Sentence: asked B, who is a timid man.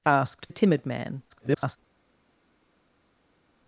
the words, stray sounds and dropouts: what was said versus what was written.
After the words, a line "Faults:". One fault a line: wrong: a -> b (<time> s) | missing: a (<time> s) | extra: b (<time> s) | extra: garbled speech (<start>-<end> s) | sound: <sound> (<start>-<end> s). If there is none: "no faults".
asked A timid man. [garbled]
Faults:
missing: B who is (0.5 s)
extra: garbled speech (1.3-1.8 s)